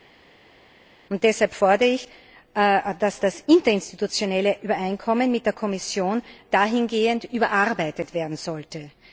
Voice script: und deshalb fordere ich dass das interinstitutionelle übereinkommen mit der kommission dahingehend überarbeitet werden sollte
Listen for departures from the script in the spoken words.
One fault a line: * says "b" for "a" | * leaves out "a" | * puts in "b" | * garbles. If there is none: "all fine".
all fine